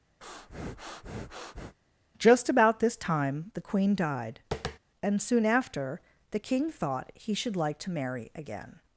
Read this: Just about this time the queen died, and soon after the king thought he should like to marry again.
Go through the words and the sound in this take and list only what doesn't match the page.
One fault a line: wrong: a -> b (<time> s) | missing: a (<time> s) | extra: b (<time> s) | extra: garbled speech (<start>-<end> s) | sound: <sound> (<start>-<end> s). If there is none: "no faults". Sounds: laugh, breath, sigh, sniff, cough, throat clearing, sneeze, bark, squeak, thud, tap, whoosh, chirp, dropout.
sound: breath (0.2-1.8 s)
sound: tap (4.5-4.8 s)